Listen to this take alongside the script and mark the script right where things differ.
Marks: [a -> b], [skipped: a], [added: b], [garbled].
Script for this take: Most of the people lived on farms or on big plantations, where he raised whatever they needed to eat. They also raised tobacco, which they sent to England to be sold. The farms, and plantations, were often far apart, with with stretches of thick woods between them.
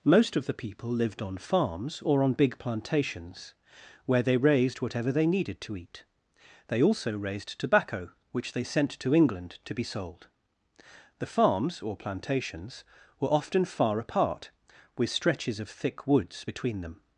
Most of the people lived on farms or on big plantations, where [he -> they] raised whatever they needed to eat. They also raised tobacco, which they sent to England to be sold. The farms, [and -> or] plantations, were often far apart, with [skipped: with] stretches of thick woods between them.